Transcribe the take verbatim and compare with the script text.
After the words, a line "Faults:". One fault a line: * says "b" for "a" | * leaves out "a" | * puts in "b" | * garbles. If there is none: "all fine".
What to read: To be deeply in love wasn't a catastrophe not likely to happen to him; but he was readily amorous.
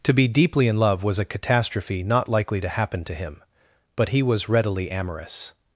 To be deeply in love was a catastrophe not likely to happen to him; but he was readily amorous.
Faults:
* says "was" for "wasn't"